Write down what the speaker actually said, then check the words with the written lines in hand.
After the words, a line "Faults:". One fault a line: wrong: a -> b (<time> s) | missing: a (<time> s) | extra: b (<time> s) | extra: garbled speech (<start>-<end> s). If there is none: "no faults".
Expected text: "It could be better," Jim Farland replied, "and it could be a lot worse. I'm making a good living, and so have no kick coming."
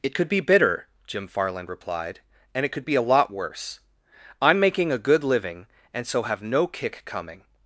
"It could be bitter," Jim Farland replied, "and it could be a lot worse. I'm making a good living, and so have no kick coming."
Faults:
wrong: better -> bitter (0.4 s)